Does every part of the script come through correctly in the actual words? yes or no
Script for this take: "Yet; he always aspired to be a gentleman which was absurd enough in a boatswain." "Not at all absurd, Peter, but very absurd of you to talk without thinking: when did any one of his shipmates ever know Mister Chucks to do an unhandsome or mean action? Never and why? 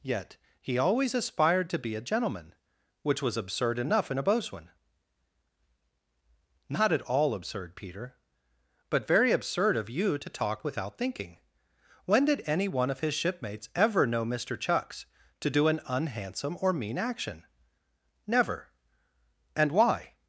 yes